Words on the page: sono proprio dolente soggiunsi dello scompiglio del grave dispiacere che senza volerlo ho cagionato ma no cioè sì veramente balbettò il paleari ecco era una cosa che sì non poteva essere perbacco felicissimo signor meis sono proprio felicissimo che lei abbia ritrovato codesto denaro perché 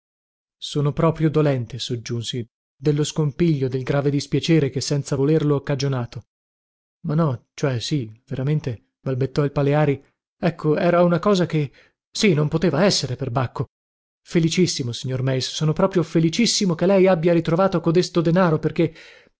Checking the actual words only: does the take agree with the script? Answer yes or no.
yes